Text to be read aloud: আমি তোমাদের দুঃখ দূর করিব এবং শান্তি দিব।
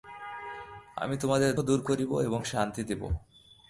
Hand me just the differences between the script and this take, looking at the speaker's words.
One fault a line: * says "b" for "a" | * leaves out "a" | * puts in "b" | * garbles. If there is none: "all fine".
* leaves out "দুঃখ"